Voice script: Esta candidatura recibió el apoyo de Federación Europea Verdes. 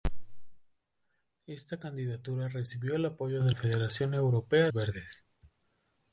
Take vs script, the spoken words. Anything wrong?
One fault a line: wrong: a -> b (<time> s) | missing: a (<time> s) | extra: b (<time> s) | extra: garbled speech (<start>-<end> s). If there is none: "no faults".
no faults